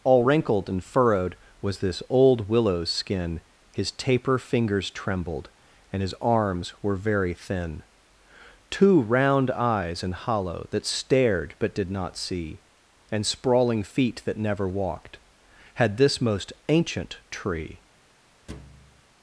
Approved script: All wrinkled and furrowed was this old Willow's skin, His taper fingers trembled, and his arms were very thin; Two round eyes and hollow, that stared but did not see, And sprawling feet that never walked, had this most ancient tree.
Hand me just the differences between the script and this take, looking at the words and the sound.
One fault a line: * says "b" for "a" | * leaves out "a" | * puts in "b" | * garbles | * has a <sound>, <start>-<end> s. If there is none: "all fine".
* has a thud, 18.5-19.0 s